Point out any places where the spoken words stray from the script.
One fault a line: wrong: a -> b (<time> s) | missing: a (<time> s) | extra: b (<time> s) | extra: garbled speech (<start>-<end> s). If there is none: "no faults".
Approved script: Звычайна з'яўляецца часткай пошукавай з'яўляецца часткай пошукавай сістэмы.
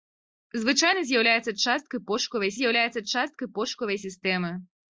no faults